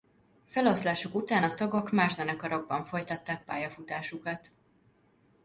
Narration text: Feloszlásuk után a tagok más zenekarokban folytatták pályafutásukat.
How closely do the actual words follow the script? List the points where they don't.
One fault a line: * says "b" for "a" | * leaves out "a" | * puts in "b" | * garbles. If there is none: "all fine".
all fine